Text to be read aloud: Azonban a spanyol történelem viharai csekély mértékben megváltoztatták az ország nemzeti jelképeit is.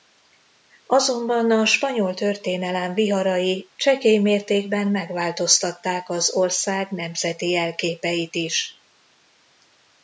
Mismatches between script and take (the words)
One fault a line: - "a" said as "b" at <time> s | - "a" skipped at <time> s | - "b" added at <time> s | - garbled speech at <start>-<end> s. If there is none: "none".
none